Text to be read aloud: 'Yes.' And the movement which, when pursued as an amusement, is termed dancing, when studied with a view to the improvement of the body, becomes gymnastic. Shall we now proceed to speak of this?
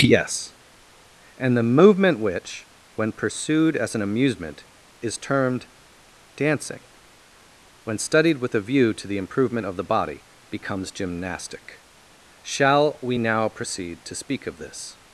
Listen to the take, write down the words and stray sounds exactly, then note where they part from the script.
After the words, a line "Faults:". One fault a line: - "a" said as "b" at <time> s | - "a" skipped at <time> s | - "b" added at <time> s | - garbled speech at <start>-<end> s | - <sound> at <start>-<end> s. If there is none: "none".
'Yes.' And the movement which, when pursued as an amusement, is termed dancing, when studied with a view to the improvement of the body, becomes gymnastic. Shall we now proceed to speak of this?
Faults:
none